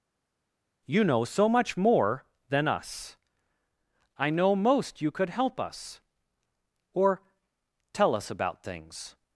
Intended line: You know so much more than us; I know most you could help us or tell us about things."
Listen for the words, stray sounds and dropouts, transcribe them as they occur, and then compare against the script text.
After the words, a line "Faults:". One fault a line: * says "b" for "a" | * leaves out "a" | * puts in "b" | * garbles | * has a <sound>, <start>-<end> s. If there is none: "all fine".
You know so much more than us; I know most you could help us or tell us about things."
Faults:
all fine